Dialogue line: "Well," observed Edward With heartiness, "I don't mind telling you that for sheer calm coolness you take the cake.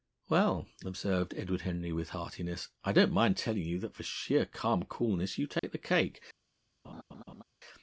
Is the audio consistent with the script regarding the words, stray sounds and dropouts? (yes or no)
no